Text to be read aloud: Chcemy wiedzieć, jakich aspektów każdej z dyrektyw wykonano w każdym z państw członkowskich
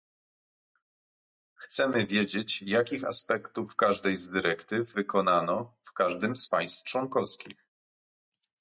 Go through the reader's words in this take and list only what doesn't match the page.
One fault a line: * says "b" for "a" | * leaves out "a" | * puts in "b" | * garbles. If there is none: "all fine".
all fine